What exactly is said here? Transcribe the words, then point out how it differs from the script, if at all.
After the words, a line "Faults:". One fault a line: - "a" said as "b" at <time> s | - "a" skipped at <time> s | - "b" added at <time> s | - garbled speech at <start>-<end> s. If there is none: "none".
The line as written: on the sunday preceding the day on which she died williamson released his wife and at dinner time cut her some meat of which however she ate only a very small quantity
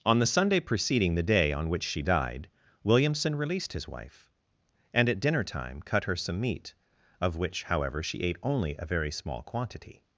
on the sunday preceding the day on which she died williamson released his wife and at dinner time cut her some meat of which however she ate only a very small quantity
Faults:
none